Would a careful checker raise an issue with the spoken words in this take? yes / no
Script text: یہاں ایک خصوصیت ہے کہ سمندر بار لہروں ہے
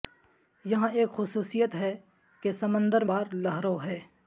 no